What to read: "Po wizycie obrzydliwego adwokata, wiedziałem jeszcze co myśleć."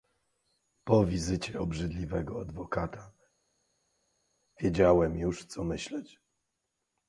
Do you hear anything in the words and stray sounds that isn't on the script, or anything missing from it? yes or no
yes